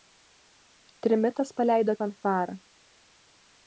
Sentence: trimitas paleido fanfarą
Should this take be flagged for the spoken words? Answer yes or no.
no